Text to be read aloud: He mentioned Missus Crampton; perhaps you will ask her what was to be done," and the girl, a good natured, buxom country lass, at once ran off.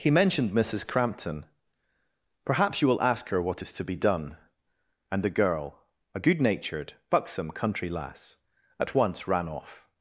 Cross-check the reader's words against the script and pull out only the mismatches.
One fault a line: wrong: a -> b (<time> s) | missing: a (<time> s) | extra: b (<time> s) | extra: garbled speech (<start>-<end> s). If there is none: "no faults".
wrong: was -> is (3.6 s)